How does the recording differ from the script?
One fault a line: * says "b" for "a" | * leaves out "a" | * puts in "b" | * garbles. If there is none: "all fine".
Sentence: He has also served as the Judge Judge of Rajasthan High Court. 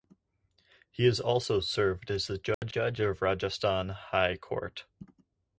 all fine